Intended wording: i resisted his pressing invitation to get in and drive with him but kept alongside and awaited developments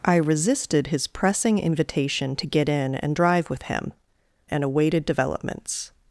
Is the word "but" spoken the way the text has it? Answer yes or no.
no